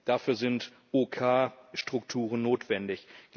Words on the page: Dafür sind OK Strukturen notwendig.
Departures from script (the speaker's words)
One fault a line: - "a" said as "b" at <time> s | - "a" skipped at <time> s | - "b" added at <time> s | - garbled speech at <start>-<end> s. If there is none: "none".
none